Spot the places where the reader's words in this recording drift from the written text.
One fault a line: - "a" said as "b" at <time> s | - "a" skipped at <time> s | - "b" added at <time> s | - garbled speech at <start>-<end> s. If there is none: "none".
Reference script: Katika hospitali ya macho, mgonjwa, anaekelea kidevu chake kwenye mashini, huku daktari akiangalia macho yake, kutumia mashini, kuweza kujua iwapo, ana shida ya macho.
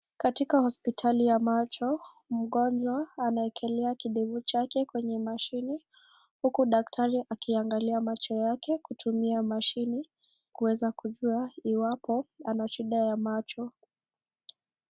none